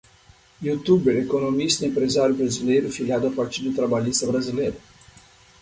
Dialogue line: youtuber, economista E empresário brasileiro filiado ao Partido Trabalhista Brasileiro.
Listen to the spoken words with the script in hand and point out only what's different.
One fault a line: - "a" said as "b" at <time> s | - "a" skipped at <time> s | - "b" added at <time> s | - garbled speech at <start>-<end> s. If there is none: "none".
none